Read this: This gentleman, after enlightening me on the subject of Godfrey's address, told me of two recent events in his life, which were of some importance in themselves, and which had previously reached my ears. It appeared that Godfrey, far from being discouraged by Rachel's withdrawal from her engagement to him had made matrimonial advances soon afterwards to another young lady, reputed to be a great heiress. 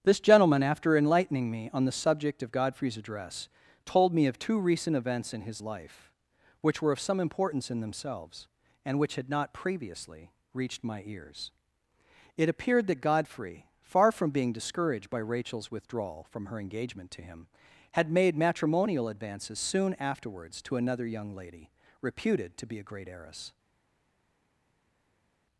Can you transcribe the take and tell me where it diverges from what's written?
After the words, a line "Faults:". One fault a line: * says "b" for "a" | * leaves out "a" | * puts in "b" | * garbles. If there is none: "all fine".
This gentleman, after enlightening me on the subject of Godfrey's address, told me of two recent events in his life, which were of some importance in themselves, and which had not previously reached my ears. It appeared that Godfrey, far from being discouraged by Rachel's withdrawal from her engagement to him had made matrimonial advances soon afterwards to another young lady, reputed to be a great heiress.
Faults:
* puts in "not"